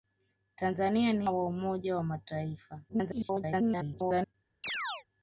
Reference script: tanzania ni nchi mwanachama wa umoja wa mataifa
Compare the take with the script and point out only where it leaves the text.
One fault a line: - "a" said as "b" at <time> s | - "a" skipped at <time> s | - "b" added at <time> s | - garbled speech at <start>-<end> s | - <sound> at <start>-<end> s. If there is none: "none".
- "nchi mwanachama" skipped at 1.3 s
- garbled speech at 2.9-4.3 s
- chirp at 4.6-5.0 s